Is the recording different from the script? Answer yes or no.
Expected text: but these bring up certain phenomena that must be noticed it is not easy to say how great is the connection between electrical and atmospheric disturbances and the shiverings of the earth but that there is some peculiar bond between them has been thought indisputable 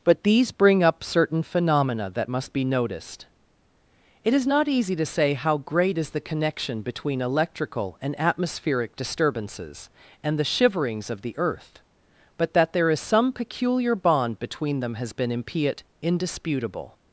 yes